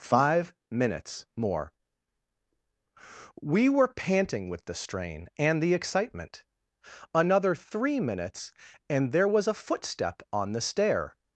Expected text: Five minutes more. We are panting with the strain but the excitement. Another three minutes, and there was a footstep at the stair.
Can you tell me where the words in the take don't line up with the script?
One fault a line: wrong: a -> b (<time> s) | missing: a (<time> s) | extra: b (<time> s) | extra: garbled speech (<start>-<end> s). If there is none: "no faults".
wrong: are -> were (3.7 s)
wrong: but -> and (5.4 s)
wrong: at -> on (10.3 s)